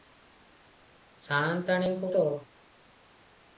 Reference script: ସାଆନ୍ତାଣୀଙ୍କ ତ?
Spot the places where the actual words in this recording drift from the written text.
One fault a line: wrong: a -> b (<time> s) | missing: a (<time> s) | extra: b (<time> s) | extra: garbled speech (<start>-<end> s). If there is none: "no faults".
no faults